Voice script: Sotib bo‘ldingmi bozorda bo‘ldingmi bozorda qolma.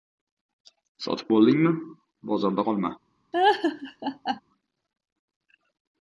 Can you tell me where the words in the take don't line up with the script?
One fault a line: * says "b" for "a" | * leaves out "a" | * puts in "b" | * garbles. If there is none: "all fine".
* leaves out "bo‘ldingmi bozorda"